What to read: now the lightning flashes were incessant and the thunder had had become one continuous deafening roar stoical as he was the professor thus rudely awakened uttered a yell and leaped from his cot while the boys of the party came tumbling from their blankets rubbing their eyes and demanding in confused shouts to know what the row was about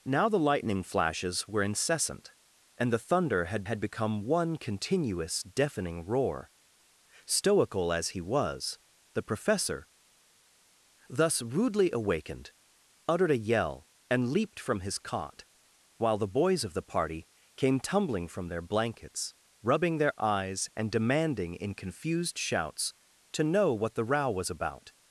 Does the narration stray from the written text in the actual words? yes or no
no